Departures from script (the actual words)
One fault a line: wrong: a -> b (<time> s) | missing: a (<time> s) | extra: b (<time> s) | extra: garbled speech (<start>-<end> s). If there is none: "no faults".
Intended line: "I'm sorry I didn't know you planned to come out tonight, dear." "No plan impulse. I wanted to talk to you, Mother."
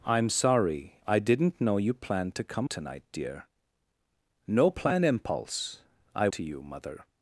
missing: out (2.7 s)
missing: wanted to talk (6.3 s)